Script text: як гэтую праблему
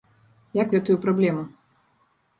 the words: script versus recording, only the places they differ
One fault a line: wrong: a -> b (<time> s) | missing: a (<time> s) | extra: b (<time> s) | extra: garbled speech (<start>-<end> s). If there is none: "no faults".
no faults